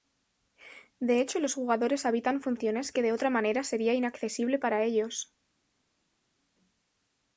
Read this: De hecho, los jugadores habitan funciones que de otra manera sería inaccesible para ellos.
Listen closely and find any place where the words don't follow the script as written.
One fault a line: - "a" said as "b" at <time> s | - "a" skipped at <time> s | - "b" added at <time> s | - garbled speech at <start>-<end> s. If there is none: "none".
none